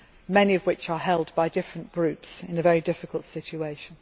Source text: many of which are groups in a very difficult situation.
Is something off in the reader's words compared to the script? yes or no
yes